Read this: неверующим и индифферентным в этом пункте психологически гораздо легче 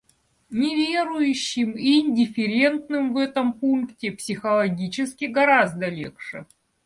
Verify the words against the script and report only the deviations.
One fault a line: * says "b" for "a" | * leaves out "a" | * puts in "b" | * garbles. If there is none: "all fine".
all fine